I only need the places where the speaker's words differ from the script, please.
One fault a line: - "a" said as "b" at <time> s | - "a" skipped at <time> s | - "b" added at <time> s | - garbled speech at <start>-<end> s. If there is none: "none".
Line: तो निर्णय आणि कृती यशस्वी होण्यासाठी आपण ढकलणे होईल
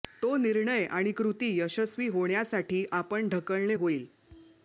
none